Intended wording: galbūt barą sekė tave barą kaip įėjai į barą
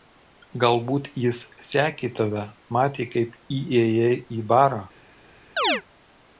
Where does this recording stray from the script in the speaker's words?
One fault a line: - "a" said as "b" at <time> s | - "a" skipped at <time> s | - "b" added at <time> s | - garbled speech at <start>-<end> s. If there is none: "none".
- "barą" said as "jis" at 1.2 s
- "barą" said as "matė" at 2.8 s